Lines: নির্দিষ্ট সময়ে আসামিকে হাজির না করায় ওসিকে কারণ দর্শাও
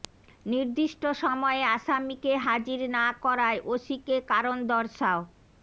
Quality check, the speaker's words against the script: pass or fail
pass